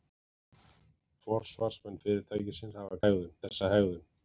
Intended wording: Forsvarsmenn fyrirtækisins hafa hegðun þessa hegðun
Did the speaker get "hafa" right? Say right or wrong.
right